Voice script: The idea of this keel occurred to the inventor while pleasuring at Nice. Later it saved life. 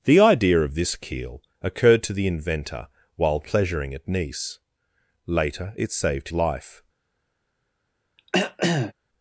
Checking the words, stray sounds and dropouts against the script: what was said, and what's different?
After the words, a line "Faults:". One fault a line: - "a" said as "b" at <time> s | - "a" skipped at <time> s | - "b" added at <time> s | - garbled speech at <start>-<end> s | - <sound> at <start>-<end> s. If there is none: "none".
The idea of this keel occurred to the inventor while pleasuring at Nice. Later it saved life.
Faults:
- throat clearing at 8.2-8.9 s